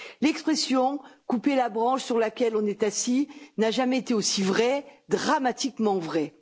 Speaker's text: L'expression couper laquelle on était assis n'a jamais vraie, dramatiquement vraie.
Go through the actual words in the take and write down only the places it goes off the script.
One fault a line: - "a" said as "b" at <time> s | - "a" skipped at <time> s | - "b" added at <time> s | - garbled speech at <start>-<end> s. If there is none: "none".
- "la branche sur" added at 1.6 s
- "était" said as "est" at 2.6 s
- "été aussi" added at 4.0 s